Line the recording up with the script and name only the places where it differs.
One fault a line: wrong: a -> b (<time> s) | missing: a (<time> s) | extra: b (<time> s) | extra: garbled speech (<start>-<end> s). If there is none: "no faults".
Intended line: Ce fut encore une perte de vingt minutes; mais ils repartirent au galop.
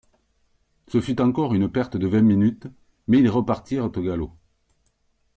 no faults